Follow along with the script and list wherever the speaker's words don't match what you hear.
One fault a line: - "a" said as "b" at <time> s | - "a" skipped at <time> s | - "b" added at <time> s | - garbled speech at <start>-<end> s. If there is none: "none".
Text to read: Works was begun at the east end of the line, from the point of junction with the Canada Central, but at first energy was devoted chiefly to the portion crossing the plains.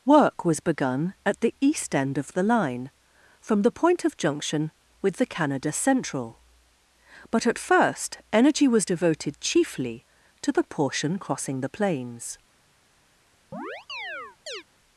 - "Works" said as "Work" at 0.1 s